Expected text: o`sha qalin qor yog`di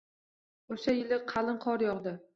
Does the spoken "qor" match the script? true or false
true